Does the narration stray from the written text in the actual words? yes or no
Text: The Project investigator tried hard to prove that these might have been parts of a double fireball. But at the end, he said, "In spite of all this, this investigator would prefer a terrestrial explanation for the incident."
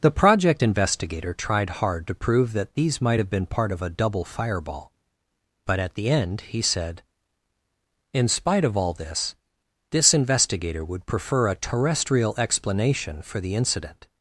yes